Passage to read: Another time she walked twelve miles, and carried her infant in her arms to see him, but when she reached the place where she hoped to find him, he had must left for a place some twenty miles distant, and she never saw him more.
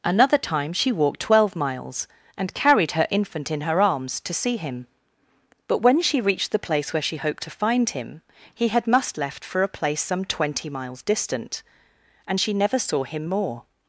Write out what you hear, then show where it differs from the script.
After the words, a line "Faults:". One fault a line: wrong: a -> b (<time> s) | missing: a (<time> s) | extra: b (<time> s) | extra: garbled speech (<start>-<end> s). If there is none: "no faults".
Another time she walked twelve miles, and carried her infant in her arms to see him, but when she reached the place where she hoped to find him, he had must left for a place some twenty miles distant, and she never saw him more.
Faults:
no faults